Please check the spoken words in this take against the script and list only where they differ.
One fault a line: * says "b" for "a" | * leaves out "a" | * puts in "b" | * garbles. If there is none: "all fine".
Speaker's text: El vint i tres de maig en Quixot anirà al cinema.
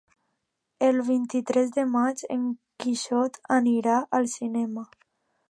all fine